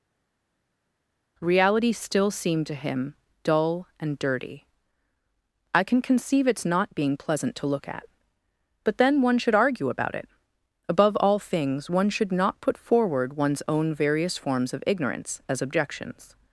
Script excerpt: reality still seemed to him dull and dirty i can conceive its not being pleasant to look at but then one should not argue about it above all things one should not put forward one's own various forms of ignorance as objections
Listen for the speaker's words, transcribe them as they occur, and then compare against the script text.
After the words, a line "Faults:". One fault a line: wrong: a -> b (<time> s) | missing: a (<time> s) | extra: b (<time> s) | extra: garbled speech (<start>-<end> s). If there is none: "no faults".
reality still seemed to him dull and dirty i can conceive its not being pleasant to look at but then one should argue about it above all things one should not put forward one's own various forms of ignorance as objections
Faults:
missing: not (9.5 s)